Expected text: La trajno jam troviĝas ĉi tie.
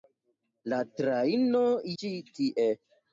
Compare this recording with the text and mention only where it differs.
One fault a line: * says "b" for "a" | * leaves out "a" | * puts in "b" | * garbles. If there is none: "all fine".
* leaves out "jam troviĝas"